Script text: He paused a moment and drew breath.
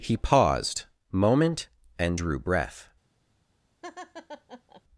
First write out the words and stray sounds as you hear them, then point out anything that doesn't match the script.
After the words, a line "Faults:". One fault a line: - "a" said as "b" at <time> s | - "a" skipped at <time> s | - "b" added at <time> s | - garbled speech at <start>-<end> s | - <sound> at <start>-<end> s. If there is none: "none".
He paused moment and drew breath.
Faults:
- "a" skipped at 0.9 s
- laugh at 3.8-4.8 s